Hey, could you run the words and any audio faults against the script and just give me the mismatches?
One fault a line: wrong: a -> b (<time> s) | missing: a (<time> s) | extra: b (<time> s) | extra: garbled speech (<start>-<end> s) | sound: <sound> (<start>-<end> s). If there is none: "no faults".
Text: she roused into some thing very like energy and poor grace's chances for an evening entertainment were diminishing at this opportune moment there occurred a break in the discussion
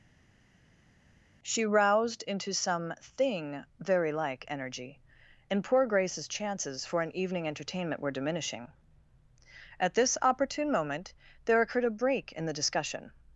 no faults